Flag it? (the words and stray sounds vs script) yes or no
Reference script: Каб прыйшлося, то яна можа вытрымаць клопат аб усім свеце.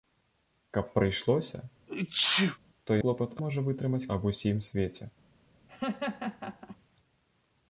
yes